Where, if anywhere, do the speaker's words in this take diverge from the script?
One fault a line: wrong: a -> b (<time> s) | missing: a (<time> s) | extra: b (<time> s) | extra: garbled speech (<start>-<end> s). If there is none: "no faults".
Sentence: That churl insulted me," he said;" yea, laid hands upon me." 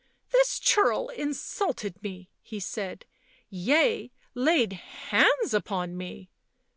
wrong: That -> This (0.3 s)